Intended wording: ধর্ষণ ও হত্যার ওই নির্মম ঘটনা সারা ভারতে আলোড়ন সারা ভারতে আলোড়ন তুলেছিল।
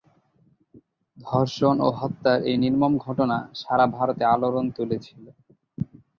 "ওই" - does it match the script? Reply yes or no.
no